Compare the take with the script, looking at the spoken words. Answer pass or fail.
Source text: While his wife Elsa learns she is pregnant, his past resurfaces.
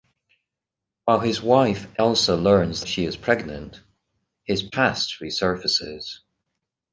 pass